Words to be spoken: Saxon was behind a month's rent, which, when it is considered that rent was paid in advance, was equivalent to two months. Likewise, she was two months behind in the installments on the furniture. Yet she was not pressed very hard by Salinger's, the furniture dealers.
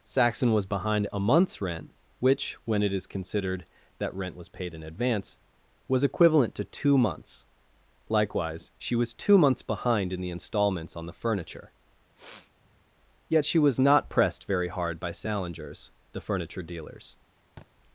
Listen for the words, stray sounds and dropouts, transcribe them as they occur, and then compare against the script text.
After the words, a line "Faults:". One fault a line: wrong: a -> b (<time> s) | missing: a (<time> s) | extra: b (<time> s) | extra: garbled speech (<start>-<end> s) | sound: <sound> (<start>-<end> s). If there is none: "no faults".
Saxon was behind a month's rent, which, when it is considered that rent was paid in advance, was equivalent to two months. Likewise, she was two months behind in the installments on the furniture. Yet she was not pressed very hard by Salinger's, the furniture dealers.
Faults:
sound: sniff (12.1-12.8 s)
sound: thud (17.6-17.7 s)